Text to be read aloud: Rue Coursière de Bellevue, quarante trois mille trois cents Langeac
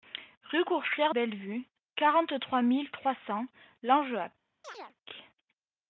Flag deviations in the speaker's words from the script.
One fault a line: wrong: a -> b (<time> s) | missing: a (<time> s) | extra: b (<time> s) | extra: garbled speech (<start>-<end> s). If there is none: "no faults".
missing: de (1.1 s)